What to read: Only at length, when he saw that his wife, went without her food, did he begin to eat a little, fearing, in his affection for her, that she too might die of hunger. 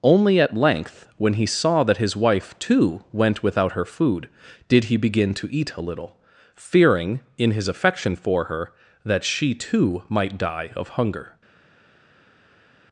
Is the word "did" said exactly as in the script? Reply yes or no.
yes